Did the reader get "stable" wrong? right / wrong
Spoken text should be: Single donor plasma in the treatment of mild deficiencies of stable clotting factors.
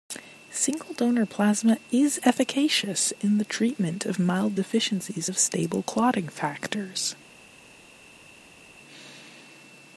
right